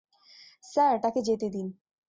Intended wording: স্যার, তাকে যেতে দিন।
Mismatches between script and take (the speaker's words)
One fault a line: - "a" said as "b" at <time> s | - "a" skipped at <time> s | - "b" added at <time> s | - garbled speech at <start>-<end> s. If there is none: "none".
none